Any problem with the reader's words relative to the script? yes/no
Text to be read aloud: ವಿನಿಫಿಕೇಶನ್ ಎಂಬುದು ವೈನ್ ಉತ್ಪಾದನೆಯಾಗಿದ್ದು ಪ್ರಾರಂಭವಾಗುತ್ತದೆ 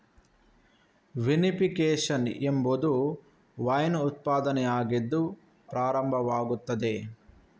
no